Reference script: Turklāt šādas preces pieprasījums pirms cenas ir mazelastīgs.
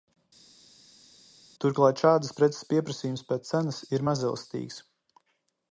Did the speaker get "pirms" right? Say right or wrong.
wrong